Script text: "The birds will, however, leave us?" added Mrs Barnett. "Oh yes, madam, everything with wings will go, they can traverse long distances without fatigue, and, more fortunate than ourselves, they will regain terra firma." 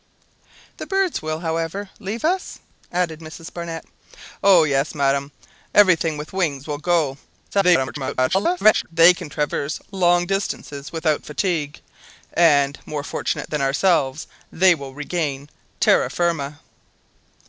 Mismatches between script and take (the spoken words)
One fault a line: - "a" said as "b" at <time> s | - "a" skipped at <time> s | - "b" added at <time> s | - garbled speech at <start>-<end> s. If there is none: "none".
- garbled speech at 7.5-8.9 s